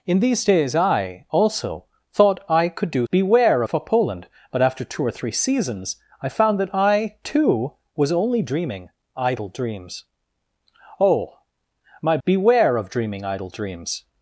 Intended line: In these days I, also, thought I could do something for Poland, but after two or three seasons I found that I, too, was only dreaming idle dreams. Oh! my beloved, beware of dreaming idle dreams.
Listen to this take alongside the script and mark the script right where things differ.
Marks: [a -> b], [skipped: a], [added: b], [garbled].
In these days I, also, thought I could do [something -> beware] for Poland, but after two or three seasons I found that I, too, was only dreaming idle dreams. Oh! my [skipped: beloved,] beware of dreaming idle dreams.